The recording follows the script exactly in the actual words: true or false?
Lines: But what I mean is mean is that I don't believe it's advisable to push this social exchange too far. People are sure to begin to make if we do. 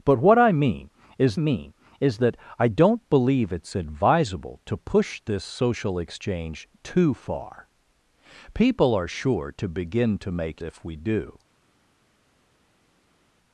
true